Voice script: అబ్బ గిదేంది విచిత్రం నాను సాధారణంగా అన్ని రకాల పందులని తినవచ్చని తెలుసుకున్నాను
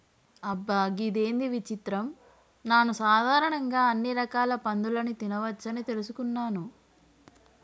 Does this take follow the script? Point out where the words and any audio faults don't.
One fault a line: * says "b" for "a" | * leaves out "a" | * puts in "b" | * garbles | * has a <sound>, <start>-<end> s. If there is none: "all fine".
all fine